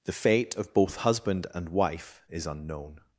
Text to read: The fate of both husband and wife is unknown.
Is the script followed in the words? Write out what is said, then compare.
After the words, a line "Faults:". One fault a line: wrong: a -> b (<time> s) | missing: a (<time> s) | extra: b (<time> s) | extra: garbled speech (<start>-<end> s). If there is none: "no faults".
The fate of both husband and wife is unknown.
Faults:
no faults